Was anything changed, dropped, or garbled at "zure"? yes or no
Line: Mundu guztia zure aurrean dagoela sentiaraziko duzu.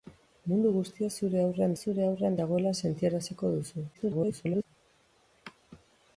no